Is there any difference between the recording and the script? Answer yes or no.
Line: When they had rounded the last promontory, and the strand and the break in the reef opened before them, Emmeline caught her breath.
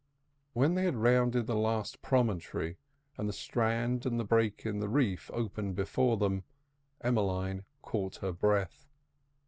no